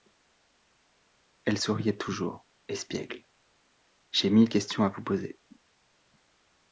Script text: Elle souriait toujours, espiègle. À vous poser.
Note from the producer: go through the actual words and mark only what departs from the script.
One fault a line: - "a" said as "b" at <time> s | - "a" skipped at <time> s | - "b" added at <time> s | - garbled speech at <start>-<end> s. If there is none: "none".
- "J'ai mille questions" added at 4.1 s